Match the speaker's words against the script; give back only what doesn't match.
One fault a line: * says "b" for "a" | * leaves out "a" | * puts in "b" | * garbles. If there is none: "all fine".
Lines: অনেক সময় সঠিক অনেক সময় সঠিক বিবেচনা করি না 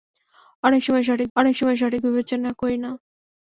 all fine